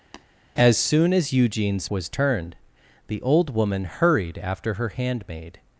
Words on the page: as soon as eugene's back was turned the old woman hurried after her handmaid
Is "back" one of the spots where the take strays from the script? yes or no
yes